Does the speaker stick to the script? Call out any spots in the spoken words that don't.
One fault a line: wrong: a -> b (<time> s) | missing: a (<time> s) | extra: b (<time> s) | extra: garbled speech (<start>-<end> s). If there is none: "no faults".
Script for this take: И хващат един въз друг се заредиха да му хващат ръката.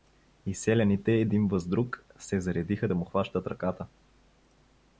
wrong: хващат -> селяните (0.6 s)